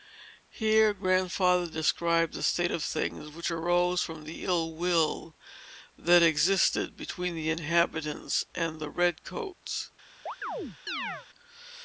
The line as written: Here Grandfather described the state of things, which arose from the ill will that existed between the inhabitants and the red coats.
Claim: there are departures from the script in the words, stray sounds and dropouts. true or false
true